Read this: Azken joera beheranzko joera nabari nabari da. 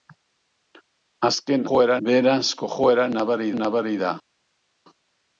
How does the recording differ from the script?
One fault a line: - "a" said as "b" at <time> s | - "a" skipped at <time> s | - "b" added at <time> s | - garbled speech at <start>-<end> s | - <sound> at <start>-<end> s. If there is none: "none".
none